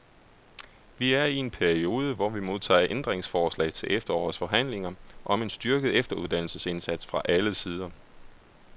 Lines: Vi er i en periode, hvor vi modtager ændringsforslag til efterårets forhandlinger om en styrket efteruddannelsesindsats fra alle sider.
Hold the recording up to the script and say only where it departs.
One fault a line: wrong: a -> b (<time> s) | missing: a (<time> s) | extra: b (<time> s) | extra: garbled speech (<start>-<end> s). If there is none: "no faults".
no faults